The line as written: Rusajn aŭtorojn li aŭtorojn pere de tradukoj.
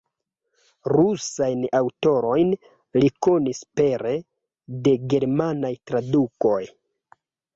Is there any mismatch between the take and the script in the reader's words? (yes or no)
yes